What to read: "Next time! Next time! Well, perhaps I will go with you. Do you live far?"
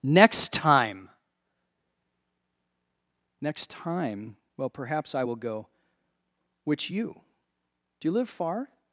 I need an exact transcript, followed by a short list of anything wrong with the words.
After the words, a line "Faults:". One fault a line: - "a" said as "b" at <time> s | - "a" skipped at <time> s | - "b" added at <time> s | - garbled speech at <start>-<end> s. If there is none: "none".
"Next time! Next time! Well, perhaps I will go which you. Do you live far?"
Faults:
- "with" said as "which" at 6.6 s